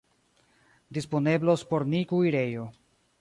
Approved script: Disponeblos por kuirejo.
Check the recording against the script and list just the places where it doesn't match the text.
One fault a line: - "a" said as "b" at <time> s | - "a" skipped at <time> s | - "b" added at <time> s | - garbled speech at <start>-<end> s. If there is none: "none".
- "ni" added at 1.9 s